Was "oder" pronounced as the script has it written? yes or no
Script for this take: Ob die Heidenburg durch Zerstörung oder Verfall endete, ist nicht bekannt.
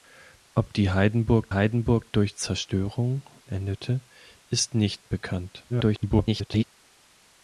no